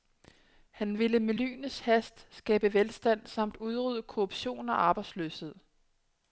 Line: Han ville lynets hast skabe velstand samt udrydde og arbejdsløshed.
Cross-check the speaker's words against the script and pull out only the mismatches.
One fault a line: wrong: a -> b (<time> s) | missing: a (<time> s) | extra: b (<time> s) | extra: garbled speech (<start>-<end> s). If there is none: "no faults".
extra: med (1.2 s)
extra: korruption (4.0 s)